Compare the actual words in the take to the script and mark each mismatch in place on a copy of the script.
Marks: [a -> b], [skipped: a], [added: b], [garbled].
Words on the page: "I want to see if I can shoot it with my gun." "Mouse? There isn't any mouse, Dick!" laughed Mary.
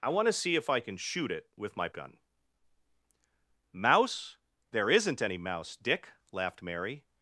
"I want to see if I can shoot it with my gun." "Mouse? There isn't any mouse, Dick!" laughed Mary.